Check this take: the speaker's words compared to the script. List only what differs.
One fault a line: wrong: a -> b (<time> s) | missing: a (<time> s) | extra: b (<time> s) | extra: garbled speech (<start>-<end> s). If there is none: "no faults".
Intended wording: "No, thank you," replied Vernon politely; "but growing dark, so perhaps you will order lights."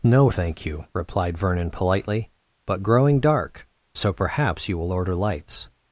no faults